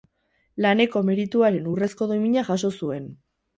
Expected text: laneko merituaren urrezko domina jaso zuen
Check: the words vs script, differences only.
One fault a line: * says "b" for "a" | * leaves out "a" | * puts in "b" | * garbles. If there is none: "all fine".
all fine